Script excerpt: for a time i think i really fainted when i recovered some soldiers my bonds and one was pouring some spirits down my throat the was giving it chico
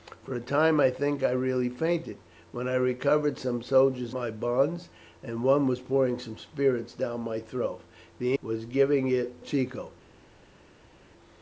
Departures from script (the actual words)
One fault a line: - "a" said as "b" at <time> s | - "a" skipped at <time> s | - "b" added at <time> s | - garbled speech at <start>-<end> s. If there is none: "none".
none